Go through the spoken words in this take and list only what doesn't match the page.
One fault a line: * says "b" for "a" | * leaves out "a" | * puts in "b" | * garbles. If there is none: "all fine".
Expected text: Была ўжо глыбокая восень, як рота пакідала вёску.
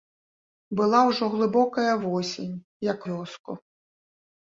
* leaves out "рота пакідала"